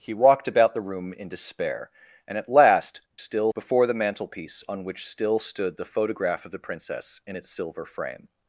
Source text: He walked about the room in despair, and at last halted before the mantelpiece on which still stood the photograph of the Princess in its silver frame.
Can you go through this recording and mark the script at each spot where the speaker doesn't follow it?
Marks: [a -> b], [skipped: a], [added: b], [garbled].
He walked about the room in despair, and at last [halted -> still] before the mantelpiece on which still stood the photograph of the Princess in its silver frame.